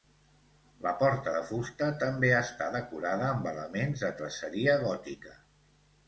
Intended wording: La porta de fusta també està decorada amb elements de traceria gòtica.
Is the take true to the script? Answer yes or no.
yes